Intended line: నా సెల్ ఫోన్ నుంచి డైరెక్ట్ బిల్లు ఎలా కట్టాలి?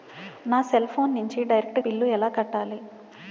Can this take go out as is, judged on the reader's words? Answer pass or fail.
pass